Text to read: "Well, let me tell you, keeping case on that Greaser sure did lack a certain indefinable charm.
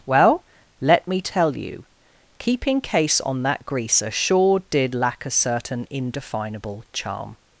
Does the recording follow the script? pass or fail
pass